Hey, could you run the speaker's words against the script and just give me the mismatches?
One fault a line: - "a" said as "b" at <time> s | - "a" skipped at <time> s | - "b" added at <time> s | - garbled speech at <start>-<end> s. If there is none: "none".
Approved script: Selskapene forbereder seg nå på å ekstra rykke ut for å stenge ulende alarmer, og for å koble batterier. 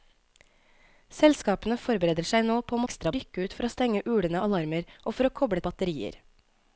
none